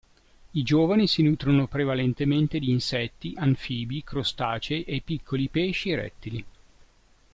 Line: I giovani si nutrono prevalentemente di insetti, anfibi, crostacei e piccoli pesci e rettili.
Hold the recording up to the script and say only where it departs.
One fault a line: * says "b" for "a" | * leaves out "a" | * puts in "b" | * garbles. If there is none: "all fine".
all fine